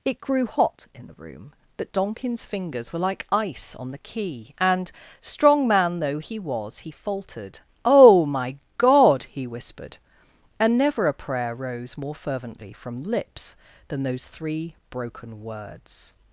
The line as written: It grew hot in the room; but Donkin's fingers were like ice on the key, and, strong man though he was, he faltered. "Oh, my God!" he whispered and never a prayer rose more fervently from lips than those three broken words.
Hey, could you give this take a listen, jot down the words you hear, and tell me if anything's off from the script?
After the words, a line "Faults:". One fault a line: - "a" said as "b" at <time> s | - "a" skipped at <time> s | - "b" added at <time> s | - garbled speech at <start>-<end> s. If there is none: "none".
It grew hot in the room; but Donkin's fingers were like ice on the key, and, strong man though he was, he faltered. "Oh, my God!" he whispered and never a prayer rose more fervently from lips than those three broken words.
Faults:
none